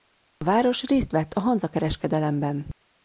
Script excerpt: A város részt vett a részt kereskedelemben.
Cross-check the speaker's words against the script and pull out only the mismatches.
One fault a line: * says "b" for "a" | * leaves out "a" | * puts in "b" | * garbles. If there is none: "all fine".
* says "hanza" for "részt"